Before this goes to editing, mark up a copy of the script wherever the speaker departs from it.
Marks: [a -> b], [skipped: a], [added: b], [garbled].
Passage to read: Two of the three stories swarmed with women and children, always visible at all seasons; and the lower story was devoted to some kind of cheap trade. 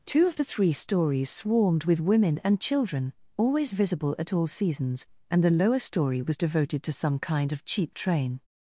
Two of the three stories swarmed with women and children, always visible at all seasons; and the lower story was devoted to some kind of cheap [trade. -> train]